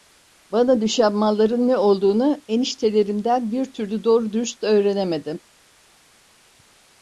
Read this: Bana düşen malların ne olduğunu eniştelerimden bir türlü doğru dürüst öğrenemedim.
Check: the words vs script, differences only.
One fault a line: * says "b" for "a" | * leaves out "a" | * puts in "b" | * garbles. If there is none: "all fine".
all fine